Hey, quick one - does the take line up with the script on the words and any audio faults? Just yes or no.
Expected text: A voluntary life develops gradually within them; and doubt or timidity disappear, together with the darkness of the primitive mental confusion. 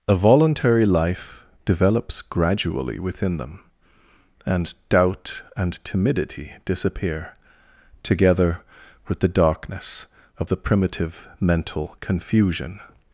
no